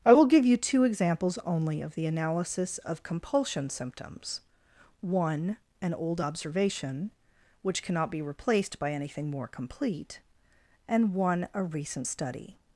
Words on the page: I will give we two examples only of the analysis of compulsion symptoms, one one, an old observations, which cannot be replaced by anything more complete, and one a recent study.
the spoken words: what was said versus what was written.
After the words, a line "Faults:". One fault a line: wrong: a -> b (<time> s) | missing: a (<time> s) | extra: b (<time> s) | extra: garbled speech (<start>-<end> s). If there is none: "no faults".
I will give you two examples only of the analysis of compulsion symptoms, one, an old observation, which cannot be replaced by anything more complete, and one a recent study.
Faults:
wrong: we -> you (0.5 s)
missing: one (5.6 s)
wrong: observations -> observation (6.2 s)